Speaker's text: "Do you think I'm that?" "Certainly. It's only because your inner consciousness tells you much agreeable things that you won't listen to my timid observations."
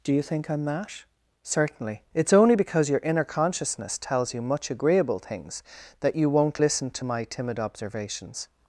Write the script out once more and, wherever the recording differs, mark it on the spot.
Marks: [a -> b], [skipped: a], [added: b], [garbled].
"Do you think I'm that?" "Certainly. It's only because your inner consciousness tells you much agreeable things that you won't listen to my timid observations."